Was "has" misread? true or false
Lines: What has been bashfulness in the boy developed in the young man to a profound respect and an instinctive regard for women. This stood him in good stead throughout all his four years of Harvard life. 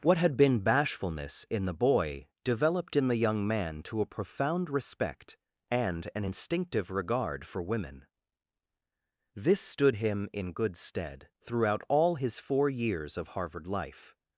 true